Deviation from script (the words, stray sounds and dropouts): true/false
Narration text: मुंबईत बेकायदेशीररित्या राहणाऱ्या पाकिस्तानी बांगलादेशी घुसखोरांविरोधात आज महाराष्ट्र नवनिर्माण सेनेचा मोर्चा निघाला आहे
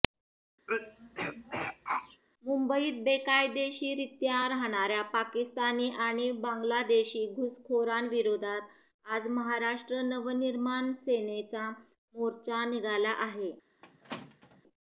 true